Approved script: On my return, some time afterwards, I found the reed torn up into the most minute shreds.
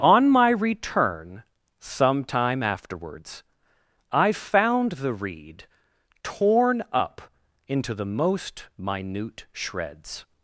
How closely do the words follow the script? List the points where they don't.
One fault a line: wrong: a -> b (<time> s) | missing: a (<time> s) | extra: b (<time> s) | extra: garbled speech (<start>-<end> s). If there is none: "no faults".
no faults